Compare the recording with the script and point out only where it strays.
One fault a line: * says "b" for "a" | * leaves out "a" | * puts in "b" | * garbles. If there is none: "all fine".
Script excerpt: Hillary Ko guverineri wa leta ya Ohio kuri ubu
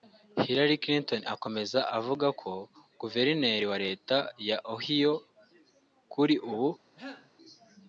* puts in "Clinton akomeza avuga"